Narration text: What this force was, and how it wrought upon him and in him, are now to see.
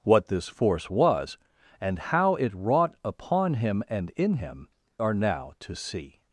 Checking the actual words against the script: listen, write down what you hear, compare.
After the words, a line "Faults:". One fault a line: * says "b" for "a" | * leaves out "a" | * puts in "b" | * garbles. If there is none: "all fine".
What this force was, and how it wrought upon him and in him, are now to see.
Faults:
all fine